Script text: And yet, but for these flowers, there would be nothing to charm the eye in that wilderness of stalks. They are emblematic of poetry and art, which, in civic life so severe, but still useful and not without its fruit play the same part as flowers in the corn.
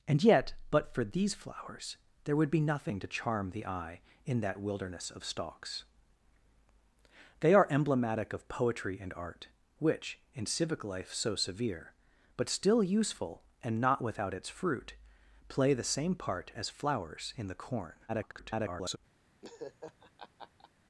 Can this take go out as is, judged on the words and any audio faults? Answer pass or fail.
fail